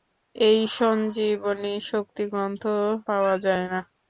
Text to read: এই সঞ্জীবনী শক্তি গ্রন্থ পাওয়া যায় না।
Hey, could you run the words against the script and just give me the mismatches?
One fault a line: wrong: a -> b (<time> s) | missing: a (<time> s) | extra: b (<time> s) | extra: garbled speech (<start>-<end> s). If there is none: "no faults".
no faults